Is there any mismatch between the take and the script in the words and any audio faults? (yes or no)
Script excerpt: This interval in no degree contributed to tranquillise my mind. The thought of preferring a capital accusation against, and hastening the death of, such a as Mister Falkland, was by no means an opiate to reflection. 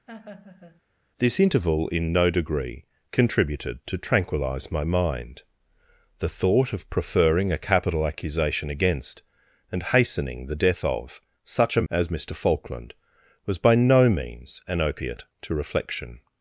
yes